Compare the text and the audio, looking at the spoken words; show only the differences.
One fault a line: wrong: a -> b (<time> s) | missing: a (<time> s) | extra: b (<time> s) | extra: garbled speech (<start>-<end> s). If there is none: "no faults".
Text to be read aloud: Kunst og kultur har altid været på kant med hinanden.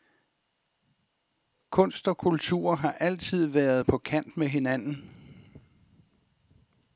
no faults